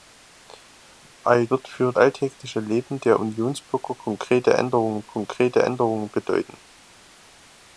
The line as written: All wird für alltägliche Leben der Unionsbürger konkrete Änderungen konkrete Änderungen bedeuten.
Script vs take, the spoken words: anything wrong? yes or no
no